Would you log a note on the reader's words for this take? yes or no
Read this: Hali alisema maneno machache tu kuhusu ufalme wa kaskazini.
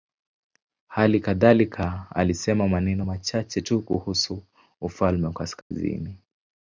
yes